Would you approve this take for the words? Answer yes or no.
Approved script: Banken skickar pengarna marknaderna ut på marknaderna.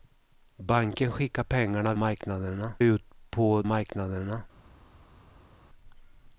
yes